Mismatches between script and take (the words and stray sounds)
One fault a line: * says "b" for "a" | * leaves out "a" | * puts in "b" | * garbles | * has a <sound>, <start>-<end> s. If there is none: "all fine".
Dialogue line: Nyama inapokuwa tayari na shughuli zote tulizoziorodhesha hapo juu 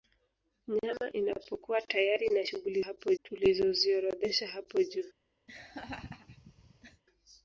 * says "hapo" for "zote"
* has a laugh, 5.5-7.0 s